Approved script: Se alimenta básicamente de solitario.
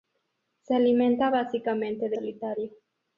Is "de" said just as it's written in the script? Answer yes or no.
yes